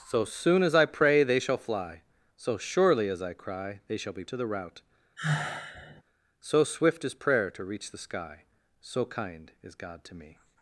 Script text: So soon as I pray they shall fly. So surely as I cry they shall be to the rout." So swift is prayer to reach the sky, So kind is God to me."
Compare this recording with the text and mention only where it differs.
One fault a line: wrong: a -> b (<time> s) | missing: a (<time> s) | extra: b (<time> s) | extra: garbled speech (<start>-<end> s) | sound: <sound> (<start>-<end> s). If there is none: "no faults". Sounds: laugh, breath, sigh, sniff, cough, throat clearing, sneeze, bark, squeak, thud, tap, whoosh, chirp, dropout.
sound: sigh (5.2-6.0 s)